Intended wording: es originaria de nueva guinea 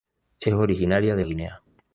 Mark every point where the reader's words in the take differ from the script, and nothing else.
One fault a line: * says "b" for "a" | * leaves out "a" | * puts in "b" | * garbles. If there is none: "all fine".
* leaves out "nueva"